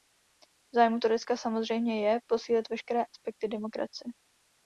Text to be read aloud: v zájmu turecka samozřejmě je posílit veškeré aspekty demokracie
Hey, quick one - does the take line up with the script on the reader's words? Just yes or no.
yes